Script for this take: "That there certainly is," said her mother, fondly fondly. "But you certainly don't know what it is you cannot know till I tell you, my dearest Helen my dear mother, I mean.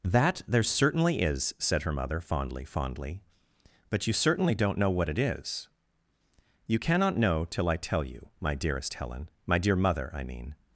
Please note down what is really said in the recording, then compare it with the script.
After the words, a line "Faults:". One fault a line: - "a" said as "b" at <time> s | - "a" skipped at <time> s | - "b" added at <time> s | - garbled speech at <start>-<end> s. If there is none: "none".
"That there certainly is," said her mother, fondly fondly. "But you certainly don't know what it is you cannot know till I tell you, my dearest Helen my dear mother, I mean.
Faults:
none